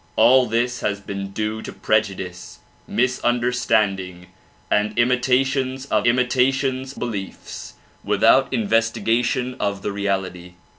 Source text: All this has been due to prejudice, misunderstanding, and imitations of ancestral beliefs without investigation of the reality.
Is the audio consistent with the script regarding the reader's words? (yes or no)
no